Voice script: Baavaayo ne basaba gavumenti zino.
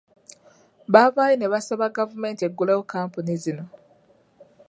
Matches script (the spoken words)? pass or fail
fail